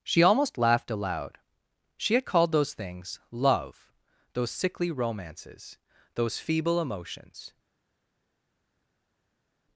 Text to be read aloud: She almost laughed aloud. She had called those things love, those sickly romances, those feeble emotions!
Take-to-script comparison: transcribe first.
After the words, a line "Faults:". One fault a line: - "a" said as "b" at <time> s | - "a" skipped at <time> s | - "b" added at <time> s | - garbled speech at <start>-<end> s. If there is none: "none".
She almost laughed aloud. She had called those things love, those sickly romances, those feeble emotions!
Faults:
none